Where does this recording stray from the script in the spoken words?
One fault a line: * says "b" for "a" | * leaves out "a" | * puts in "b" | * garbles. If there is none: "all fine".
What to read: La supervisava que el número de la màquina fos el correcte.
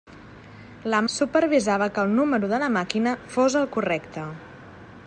all fine